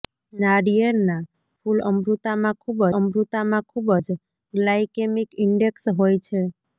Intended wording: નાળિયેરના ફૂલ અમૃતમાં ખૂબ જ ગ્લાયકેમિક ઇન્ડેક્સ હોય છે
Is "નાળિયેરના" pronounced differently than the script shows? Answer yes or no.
no